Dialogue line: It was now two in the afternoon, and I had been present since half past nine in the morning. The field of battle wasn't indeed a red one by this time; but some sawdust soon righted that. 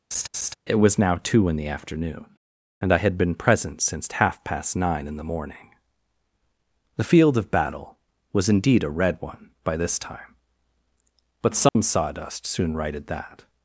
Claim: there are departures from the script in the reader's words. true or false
true